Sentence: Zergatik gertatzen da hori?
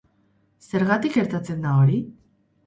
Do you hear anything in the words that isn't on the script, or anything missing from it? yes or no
no